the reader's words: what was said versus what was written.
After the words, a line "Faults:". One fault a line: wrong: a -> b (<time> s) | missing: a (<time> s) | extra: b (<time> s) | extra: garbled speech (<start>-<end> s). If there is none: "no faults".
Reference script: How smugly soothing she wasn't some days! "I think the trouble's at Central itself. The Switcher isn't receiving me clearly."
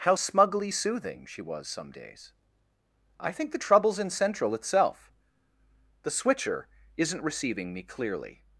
How smugly soothing she was some days! "I think the trouble's in Central itself. The Switcher isn't receiving me clearly."
Faults:
wrong: wasn't -> was (1.4 s)
wrong: at -> in (4.0 s)